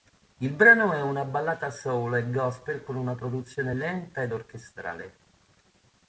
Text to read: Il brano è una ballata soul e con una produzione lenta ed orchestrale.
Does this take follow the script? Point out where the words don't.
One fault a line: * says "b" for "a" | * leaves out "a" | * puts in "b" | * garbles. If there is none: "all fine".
* puts in "gospel"